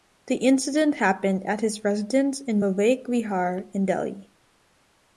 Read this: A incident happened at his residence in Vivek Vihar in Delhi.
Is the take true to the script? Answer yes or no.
no